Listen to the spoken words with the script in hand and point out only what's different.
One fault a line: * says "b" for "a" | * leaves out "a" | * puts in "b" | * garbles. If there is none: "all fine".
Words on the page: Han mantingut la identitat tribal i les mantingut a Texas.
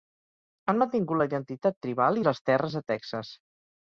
* says "terres" for "mantingut"